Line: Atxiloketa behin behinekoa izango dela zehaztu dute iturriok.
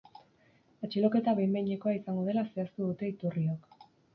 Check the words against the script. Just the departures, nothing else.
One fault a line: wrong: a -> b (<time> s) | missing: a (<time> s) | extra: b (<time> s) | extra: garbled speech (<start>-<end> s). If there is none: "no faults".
no faults